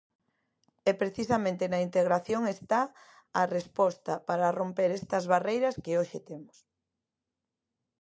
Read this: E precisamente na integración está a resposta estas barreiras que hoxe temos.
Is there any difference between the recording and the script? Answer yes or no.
yes